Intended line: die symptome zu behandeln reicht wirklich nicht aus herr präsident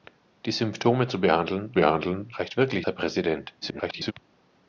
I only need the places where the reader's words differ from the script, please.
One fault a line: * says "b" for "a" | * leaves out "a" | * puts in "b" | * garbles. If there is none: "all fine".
* puts in "behandeln"
* leaves out "nicht aus"
* garbles